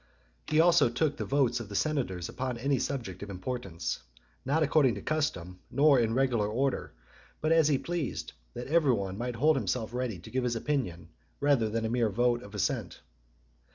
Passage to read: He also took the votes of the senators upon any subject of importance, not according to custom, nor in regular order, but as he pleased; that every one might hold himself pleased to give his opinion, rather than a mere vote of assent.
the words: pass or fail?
fail